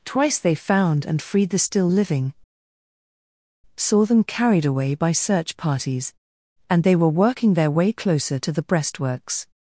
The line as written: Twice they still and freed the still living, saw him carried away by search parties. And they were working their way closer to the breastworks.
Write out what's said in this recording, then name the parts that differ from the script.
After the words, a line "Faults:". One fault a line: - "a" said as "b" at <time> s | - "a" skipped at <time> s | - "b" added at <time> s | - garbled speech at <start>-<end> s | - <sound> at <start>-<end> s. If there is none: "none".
Twice they found and freed the still living, saw them carried away by search parties. And they were working their way closer to the breastworks.
Faults:
- "still" said as "found" at 0.6 s
- "him" said as "them" at 4.1 s